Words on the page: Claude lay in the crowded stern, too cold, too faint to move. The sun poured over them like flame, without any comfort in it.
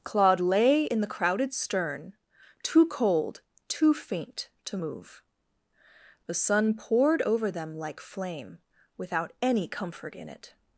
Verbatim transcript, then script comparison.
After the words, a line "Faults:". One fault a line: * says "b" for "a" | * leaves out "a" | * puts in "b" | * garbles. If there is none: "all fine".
Claude lay in the crowded stern, too cold, too faint to move. The sun poured over them like flame, without any comfort in it.
Faults:
all fine